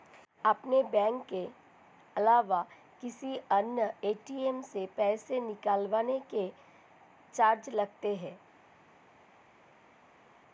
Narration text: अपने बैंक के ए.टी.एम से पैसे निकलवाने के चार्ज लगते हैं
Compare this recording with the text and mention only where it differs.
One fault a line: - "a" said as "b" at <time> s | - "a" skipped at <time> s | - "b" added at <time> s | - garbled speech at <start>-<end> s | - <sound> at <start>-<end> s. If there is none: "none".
- "अलावा किसी अन्य" added at 2.1 s